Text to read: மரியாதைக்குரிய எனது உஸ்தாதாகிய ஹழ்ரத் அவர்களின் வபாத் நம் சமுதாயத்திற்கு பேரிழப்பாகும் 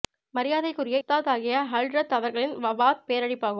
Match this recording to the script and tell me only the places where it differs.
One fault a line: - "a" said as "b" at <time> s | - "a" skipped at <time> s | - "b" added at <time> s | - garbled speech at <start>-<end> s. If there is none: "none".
- "எனது" skipped at 1.0 s
- "நம் சமுதாயத்திற்கு" skipped at 3.0 s